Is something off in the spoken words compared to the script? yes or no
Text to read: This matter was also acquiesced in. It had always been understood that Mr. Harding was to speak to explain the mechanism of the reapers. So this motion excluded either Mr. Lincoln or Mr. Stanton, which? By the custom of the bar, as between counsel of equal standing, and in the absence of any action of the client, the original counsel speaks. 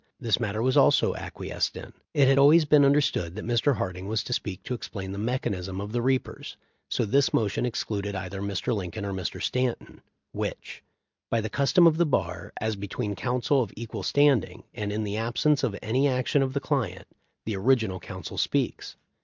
no